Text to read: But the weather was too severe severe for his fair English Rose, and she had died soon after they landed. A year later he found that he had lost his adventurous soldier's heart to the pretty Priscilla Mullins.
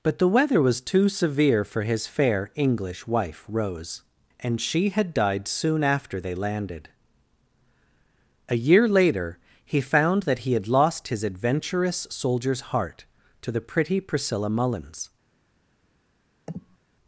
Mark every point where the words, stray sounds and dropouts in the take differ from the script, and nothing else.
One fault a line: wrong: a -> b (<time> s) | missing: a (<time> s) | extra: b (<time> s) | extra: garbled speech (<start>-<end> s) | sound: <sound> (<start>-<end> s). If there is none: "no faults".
missing: severe (1.6 s)
extra: wife (3.1 s)
sound: sniff (16.5-16.8 s)